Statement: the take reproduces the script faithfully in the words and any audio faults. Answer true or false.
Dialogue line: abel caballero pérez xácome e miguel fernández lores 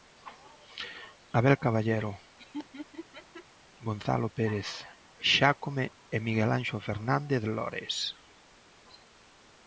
false